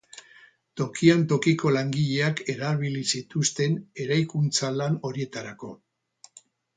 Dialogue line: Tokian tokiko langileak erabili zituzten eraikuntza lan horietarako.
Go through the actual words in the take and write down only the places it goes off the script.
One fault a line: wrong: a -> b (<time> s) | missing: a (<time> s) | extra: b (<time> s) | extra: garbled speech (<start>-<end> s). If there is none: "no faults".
no faults